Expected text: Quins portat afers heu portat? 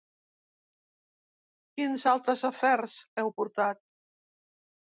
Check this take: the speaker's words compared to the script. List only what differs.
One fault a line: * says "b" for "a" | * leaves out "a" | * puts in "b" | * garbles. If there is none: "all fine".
* says "altres" for "portat"